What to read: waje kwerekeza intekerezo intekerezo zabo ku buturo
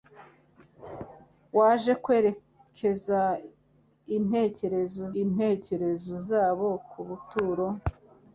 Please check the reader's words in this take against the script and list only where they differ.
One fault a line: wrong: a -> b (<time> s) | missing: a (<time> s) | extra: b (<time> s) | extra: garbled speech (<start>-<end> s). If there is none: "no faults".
no faults